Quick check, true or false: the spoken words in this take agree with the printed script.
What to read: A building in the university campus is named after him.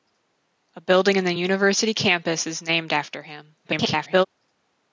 false